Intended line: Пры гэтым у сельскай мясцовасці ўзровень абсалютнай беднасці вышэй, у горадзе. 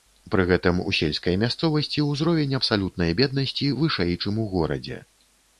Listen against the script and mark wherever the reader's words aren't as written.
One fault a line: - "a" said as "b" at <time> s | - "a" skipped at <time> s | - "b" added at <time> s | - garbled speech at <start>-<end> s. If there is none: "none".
- "чым" added at 4.2 s